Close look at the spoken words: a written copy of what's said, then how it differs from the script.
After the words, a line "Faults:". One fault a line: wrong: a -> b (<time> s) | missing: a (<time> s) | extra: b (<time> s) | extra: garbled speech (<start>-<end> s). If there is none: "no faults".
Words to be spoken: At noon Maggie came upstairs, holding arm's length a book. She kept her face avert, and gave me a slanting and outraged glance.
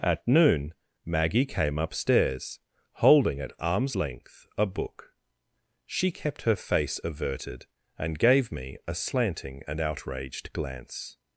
At noon Maggie came upstairs, holding at arm's length a book. She kept her face averted, and gave me a slanting and outraged glance.
Faults:
extra: at (3.4 s)
wrong: avert -> averted (7.0 s)